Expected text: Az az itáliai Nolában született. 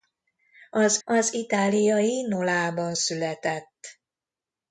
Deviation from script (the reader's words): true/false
false